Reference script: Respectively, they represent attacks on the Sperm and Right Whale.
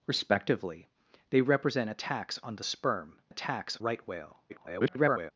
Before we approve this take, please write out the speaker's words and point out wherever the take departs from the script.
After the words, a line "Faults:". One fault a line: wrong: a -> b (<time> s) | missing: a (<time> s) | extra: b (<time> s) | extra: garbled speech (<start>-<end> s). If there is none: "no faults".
Respectively, they represent attacks on the Sperm attacks Right Whale. [garbled]
Faults:
wrong: and -> attacks (3.3 s)
extra: garbled speech (4.5-5.3 s)